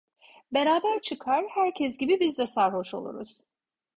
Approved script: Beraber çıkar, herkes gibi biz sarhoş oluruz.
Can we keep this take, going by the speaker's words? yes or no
no